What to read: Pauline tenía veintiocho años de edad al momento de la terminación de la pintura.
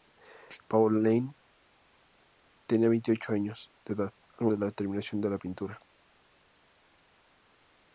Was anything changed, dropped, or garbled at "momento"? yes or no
yes